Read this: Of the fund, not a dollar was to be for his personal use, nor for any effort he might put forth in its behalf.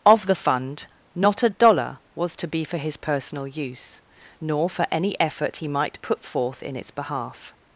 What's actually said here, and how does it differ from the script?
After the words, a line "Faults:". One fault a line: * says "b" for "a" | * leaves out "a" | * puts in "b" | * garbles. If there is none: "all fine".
Of the fund, not a dollar was to be for his personal use, nor for any effort he might put forth in its behalf.
Faults:
all fine